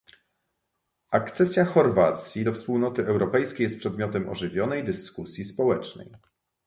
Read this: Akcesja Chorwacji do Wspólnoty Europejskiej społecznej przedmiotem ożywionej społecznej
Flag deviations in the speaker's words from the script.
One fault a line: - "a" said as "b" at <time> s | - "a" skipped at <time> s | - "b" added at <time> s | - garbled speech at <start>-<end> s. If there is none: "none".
- "społecznej" said as "jest" at 3.6 s
- "dyskusji" added at 4.8 s